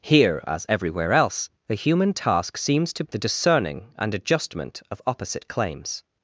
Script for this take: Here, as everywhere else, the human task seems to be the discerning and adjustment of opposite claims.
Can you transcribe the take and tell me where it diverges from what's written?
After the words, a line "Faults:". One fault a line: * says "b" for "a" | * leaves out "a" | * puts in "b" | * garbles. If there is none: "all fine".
Here, as everywhere else, the human task seems to the discerning and adjustment of opposite claims.
Faults:
* leaves out "be"